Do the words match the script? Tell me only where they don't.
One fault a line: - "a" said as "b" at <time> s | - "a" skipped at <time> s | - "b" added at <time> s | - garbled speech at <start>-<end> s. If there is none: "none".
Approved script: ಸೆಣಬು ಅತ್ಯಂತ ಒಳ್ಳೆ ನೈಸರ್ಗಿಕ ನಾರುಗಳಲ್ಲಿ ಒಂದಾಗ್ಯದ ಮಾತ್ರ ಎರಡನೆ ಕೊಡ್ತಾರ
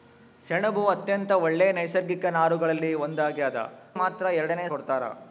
none